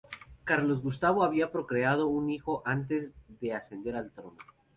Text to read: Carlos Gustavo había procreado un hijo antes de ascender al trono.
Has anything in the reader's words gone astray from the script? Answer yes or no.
no